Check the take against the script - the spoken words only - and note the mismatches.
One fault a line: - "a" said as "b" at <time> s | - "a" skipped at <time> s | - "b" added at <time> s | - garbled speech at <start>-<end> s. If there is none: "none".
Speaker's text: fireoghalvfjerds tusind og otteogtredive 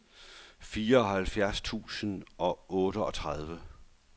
none